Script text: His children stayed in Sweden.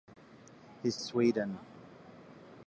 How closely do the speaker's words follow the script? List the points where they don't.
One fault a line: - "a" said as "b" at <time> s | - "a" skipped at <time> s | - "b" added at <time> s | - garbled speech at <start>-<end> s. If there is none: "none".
- "children stayed in" skipped at 1.0 s